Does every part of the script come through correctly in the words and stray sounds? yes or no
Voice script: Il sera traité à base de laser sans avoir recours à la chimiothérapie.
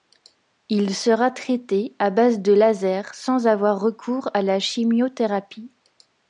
yes